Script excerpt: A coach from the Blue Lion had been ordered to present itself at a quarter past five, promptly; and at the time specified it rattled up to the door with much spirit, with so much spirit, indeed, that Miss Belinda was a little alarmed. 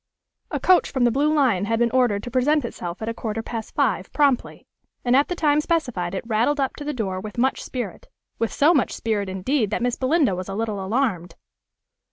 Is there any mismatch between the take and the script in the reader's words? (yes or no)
no